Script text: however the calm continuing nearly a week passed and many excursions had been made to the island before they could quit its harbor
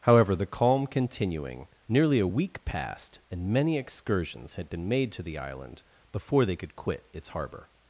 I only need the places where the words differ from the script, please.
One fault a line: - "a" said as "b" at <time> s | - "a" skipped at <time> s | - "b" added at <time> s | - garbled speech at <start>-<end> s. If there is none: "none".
none